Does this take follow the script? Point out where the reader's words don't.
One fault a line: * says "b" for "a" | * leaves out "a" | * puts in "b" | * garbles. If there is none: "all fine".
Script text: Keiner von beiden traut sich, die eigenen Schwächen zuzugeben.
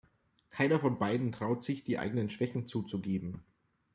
all fine